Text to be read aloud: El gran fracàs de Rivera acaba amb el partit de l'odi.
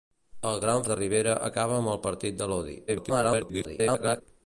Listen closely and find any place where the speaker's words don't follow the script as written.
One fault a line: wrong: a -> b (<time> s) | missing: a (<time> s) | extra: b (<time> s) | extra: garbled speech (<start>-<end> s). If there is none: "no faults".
missing: fracàs (0.8 s)
extra: garbled speech (2.9-4.2 s)